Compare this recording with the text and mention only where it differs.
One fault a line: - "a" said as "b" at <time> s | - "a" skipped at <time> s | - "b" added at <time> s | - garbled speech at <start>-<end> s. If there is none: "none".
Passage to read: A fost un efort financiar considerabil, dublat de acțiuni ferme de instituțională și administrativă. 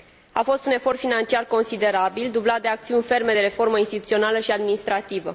- "reformă" added at 3.4 s